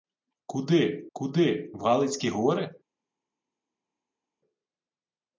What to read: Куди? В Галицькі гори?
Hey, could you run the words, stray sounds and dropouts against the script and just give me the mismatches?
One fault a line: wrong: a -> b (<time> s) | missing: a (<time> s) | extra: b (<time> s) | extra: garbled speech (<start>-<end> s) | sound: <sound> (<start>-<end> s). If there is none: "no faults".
extra: куди (1.1 s)